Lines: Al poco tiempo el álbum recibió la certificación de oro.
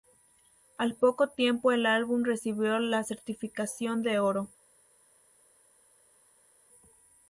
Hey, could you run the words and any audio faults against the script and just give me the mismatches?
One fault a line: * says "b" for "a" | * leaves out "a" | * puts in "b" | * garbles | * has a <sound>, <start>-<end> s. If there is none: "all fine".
all fine